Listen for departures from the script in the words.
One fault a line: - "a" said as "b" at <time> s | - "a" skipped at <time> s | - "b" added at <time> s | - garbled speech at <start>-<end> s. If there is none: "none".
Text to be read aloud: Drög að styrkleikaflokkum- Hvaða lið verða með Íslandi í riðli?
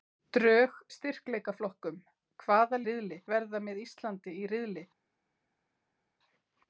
- "að" skipped at 0.8 s
- "lið" said as "riðli" at 2.9 s